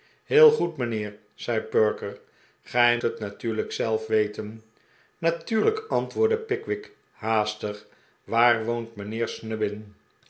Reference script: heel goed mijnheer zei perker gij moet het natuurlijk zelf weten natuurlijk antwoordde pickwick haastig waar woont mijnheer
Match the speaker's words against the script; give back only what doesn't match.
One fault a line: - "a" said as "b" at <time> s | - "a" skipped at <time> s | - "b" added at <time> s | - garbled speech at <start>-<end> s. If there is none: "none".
- "moet" skipped at 3.0 s